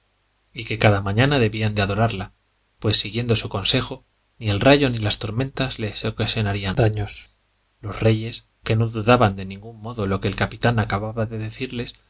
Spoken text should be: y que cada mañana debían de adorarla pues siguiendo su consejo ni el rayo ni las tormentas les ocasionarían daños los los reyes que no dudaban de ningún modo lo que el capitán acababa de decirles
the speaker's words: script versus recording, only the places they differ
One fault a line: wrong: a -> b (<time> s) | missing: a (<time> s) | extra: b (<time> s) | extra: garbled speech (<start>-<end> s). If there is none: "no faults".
missing: los (8.0 s)